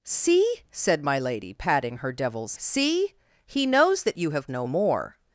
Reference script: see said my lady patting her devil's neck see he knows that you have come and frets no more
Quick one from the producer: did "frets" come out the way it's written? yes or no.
no